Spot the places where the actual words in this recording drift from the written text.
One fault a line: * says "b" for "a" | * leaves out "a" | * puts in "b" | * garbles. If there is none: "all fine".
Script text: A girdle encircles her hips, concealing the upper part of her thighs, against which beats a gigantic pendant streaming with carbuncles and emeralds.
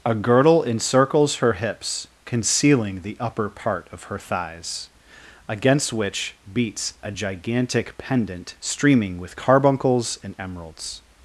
all fine